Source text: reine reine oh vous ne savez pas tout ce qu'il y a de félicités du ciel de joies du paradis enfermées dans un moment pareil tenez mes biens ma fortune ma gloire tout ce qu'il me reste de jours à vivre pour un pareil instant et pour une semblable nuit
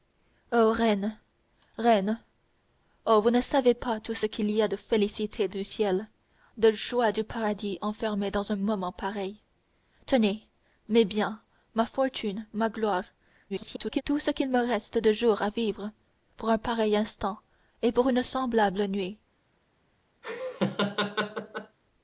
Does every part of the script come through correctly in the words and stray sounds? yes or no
no